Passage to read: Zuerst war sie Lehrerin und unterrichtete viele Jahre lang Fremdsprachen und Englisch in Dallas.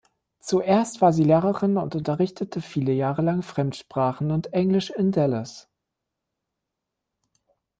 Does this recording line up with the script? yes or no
yes